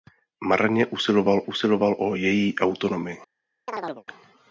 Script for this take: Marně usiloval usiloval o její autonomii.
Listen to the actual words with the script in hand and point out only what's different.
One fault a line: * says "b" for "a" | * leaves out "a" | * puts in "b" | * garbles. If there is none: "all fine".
all fine